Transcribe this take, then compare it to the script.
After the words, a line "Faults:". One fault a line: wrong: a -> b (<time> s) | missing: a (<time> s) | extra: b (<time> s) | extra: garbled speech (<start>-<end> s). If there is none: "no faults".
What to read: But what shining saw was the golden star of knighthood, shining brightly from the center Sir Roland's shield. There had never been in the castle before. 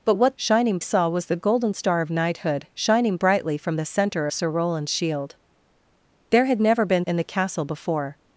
But what shining saw was the golden star of knighthood, shining brightly from the center Sir Roland's shield. There had never been in the castle before.
Faults:
no faults